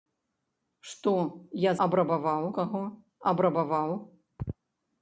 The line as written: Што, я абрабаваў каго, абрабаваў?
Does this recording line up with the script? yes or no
yes